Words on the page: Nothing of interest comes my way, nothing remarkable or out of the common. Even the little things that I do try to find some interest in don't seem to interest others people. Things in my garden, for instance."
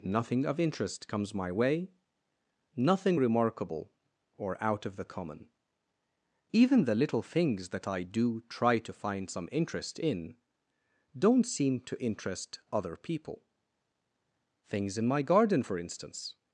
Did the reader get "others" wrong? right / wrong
wrong